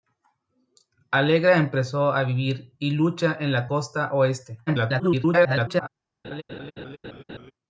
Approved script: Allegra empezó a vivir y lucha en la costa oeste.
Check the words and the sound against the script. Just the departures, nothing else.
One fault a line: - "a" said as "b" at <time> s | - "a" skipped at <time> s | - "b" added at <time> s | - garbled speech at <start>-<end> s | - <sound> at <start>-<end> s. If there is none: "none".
- garbled speech at 4.7-5.9 s
- laugh at 6.2-7.5 s